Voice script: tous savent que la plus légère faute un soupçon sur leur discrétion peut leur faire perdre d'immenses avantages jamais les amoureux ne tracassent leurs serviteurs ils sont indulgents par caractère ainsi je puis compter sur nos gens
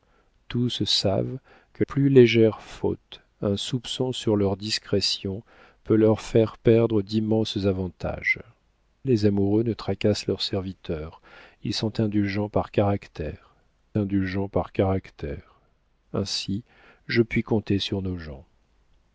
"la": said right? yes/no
no